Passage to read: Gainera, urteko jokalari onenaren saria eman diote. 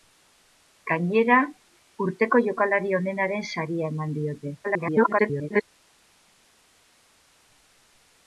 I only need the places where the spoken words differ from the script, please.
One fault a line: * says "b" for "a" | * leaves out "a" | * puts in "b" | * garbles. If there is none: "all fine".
* garbles